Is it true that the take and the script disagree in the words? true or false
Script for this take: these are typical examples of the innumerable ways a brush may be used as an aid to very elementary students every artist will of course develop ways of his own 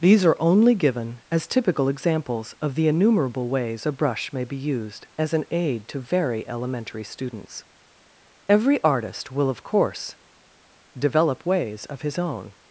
true